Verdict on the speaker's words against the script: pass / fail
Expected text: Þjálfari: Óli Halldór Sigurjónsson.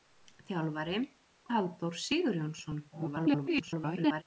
fail